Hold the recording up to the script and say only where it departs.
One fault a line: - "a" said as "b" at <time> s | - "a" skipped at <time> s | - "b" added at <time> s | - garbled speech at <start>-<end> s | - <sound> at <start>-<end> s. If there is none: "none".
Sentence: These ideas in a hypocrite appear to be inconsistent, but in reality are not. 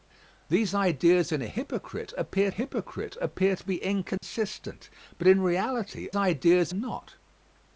- "hypocrite appear" added at 2.5 s
- dropout at 4.2-4.2 s
- "are" said as "ideas" at 6.1 s